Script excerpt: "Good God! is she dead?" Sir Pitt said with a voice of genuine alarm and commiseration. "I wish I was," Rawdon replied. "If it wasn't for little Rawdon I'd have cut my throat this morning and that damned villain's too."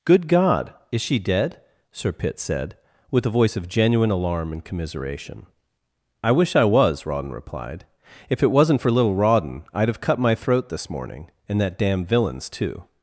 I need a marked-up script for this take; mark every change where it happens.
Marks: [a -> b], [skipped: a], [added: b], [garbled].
"Good God! is she dead?" Sir Pitt said with a voice of genuine alarm and commiseration. "I wish I was," Rawdon replied. "If it wasn't for little Rawdon I'd have cut my throat this morning and that [damned -> damn] villain's too."